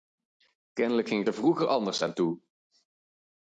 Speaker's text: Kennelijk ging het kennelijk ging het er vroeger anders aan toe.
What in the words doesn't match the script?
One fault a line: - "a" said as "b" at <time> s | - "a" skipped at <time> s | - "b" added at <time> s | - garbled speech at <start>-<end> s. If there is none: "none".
- "kennelijk ging het" skipped at 1.3 s